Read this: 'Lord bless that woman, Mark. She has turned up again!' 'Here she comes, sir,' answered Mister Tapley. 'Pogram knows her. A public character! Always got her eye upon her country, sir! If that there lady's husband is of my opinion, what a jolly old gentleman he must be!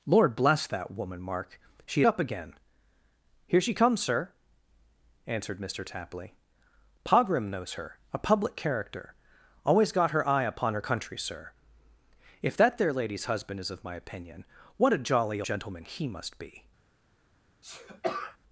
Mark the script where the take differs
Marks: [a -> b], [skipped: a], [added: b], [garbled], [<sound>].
'Lord bless that woman, Mark. She [skipped: has turned] up again!' 'Here she comes, sir,' answered Mister Tapley. 'Pogram knows her. A public character! Always got her eye upon her country, sir! If that there lady's husband is of my opinion, what a jolly [skipped: old] gentleman he must be! [sneeze]